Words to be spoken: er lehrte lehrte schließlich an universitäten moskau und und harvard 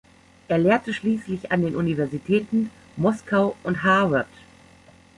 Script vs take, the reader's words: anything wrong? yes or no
yes